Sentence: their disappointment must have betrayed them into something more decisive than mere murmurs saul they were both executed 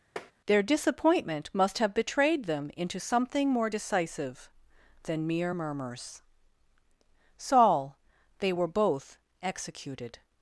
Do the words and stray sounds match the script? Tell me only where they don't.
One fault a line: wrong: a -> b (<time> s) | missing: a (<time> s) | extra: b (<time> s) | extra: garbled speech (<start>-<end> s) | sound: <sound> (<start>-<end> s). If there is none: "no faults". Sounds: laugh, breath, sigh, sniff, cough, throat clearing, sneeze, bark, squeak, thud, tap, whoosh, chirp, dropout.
sound: tap (0.2-0.3 s)